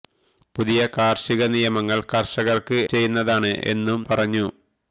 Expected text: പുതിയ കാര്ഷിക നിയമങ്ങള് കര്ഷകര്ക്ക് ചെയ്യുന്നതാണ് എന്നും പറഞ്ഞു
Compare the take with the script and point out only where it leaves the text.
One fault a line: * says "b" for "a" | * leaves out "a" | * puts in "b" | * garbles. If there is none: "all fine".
all fine